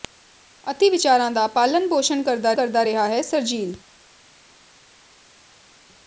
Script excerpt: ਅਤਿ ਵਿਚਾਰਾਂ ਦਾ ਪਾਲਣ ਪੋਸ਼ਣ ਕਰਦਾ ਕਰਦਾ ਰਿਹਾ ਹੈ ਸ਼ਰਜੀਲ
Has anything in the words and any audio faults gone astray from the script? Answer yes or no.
no